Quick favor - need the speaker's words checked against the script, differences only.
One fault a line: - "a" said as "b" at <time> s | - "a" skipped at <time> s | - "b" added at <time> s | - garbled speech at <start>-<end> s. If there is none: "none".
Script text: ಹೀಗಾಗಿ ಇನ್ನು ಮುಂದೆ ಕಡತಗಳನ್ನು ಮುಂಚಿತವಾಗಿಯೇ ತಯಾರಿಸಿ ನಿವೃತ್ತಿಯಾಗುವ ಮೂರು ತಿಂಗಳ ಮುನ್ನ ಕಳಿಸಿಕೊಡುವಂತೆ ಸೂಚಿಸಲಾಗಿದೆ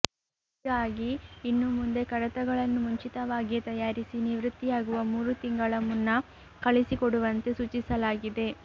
none